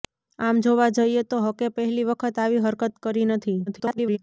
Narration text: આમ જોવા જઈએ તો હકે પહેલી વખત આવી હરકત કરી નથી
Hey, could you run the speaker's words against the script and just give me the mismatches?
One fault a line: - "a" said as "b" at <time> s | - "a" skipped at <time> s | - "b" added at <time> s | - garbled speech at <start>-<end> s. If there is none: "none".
- garbled speech at 3.7-4.2 s